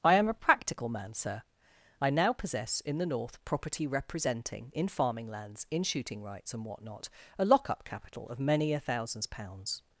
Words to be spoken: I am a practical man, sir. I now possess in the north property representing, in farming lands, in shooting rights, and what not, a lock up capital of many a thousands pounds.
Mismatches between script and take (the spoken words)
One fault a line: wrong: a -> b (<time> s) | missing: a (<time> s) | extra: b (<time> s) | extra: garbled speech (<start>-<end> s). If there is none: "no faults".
no faults